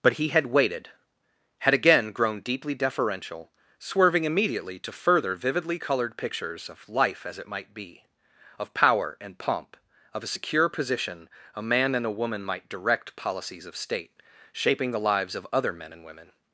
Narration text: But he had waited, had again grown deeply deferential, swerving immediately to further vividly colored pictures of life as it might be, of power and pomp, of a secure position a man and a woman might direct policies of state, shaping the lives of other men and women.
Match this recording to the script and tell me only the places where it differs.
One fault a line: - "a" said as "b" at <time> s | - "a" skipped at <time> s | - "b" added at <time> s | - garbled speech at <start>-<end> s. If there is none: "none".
none